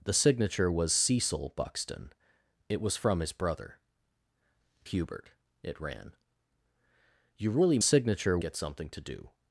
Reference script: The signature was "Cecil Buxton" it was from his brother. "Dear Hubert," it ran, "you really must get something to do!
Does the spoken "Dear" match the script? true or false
false